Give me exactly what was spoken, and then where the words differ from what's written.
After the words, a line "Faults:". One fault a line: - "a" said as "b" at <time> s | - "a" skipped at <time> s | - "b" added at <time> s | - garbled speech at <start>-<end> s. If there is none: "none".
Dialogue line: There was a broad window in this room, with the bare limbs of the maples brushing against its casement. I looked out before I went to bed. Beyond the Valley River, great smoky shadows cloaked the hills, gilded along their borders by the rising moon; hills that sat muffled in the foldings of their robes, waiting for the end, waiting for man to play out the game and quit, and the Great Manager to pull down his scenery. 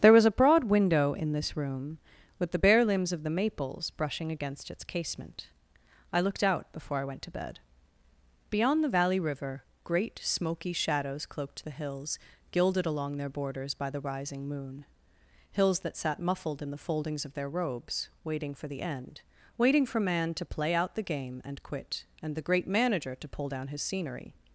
There was a broad window in this room, with the bare limbs of the maples brushing against its casement. I looked out before I went to bed. Beyond the Valley River, great smoky shadows cloaked the hills, gilded along their borders by the rising moon; hills that sat muffled in the foldings of their robes, waiting for the end, waiting for man to play out the game and quit, and the Great Manager to pull down his scenery.
Faults:
none